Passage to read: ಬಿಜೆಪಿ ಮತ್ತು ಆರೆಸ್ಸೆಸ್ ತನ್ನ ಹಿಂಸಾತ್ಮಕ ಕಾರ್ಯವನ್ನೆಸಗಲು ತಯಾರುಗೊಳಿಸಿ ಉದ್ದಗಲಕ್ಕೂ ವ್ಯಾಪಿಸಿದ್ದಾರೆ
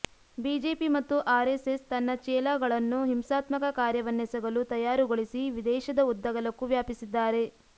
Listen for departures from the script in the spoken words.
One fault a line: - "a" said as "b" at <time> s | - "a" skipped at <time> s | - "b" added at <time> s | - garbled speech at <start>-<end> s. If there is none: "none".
- "ಚೇಲಾಗಳನ್ನು" added at 2.2 s
- "ದೇಶದ" added at 5.7 s